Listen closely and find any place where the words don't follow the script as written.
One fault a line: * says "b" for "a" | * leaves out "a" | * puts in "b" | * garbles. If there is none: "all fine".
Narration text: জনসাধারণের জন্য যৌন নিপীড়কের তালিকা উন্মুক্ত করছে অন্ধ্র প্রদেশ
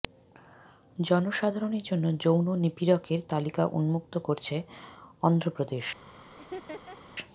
all fine